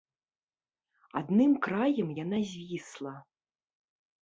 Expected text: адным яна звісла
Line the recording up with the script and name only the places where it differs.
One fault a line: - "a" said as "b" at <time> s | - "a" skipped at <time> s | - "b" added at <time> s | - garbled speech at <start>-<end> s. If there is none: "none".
- "краем" added at 1.7 s